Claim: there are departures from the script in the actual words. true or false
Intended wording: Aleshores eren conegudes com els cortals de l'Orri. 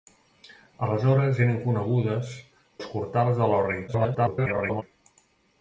true